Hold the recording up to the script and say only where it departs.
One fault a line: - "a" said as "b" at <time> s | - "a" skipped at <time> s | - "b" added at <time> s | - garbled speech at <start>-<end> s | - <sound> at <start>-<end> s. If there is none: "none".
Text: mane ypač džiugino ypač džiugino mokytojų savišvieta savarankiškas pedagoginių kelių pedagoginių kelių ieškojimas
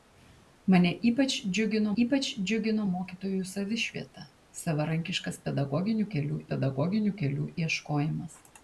none